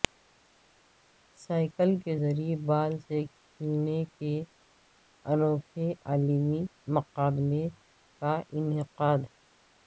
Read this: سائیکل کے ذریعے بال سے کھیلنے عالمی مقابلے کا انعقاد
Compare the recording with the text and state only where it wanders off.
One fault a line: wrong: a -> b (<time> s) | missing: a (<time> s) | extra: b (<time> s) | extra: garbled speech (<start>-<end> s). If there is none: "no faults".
extra: کے انوکھے (4.2 s)